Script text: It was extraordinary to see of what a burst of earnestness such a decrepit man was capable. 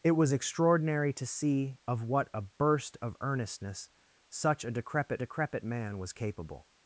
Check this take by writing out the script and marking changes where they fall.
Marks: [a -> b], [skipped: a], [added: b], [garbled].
It was extraordinary to see of what a burst of earnestness such a decrepit [added: decrepit] man was capable.